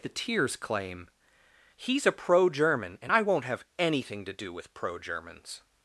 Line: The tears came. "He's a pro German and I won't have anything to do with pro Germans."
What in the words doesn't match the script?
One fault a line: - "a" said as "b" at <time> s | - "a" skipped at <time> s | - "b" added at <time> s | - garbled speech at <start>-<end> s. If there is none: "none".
- "came" said as "claim" at 0.6 s